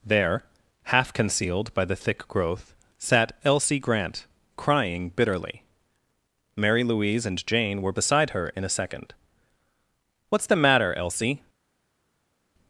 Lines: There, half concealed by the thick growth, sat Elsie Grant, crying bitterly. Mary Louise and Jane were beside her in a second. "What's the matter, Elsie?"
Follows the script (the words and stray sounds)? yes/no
yes